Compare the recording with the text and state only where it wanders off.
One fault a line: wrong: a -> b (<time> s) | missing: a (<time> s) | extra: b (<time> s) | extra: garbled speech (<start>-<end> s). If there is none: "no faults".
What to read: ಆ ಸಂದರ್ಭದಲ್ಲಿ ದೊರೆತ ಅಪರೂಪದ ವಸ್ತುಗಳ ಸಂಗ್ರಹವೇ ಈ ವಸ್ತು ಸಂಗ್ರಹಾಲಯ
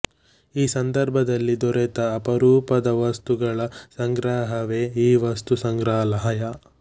wrong: ಆ -> ಈ (0.6 s)